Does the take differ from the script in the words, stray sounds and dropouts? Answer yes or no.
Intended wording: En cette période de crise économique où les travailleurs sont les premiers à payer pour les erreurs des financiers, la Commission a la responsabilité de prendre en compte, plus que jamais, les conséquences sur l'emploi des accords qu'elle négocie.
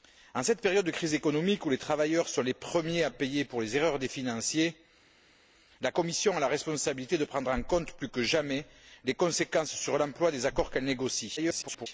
yes